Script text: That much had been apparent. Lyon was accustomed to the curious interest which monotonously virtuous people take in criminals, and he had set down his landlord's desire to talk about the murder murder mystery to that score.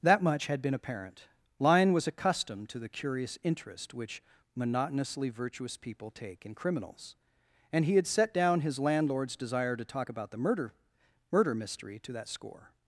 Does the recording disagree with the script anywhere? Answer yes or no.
no